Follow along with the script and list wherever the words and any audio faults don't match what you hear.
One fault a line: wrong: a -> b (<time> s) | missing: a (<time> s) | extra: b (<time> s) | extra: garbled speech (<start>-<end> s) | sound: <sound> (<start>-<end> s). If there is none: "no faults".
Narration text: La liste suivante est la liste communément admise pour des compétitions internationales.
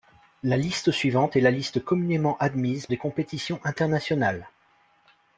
missing: pour (2.9 s)